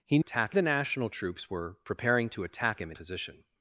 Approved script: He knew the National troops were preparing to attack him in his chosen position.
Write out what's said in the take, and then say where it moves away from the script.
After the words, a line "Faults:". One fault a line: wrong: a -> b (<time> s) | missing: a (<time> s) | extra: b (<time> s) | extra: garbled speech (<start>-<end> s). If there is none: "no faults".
He attack the National troops were preparing to attack him in position.
Faults:
wrong: knew -> attack (0.2 s)
missing: his chosen (3.0 s)